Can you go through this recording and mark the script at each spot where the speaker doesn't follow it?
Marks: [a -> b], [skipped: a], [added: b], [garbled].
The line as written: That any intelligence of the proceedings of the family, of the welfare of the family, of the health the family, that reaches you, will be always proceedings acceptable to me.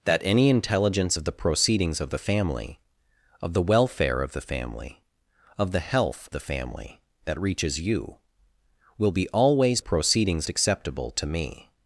That any intelligence of the proceedings of the family, of the welfare of the family, of the health the family, that reaches you, will be always proceedings acceptable to me.